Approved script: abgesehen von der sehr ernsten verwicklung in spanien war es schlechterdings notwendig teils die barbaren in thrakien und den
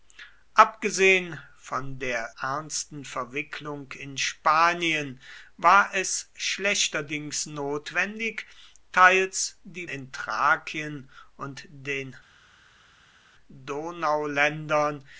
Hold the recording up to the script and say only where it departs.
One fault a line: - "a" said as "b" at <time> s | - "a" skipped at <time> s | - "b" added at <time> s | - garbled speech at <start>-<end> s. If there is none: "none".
- "sehr" skipped at 2.3 s
- "barbaren" skipped at 9.9 s